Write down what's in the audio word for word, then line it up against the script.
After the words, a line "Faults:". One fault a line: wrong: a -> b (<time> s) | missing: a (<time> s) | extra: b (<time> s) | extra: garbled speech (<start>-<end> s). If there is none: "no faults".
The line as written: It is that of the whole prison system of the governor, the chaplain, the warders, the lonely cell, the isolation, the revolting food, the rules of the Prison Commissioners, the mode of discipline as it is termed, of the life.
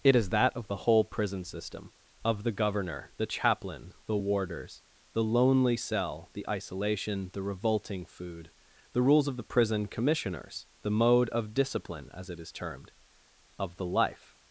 It is that of the whole prison system of the governor, the chaplain, the warders, the lonely cell, the isolation, the revolting food, the rules of the Prison Commissioners, the mode of discipline as it is termed, of the life.
Faults:
no faults